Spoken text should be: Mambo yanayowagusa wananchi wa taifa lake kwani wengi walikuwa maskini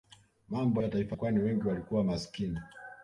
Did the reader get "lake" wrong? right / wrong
wrong